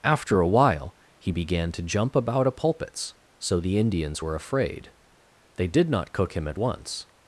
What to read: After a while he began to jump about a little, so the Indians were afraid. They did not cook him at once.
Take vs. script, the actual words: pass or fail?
fail